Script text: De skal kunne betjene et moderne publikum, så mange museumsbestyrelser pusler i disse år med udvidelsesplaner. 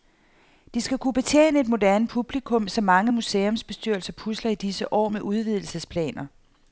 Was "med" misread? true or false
false